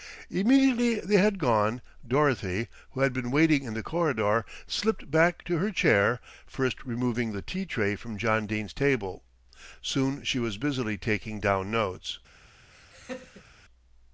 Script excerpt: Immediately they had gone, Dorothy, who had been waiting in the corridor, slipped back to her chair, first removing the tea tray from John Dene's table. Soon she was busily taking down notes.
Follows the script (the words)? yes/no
yes